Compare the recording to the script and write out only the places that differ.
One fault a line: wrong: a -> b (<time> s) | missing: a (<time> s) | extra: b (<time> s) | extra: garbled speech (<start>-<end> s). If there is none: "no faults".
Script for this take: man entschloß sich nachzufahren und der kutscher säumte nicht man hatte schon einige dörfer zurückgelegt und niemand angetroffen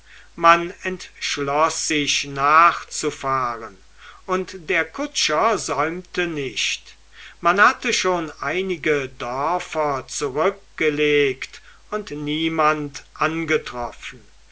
no faults